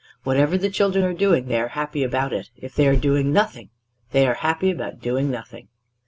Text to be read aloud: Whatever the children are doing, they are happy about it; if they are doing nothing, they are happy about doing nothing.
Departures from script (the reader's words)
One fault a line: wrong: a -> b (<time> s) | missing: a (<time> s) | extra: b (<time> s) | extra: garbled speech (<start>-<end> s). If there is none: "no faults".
no faults